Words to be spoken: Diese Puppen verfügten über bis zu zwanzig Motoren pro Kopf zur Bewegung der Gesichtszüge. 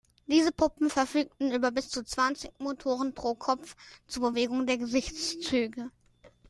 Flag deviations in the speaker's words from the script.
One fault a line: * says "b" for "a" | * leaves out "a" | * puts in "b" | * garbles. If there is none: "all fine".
all fine